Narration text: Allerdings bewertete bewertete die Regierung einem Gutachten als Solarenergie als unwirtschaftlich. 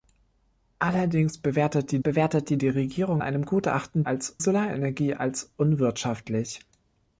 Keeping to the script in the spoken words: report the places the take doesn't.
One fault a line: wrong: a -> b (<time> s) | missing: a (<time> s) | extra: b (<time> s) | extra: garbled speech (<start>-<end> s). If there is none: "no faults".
no faults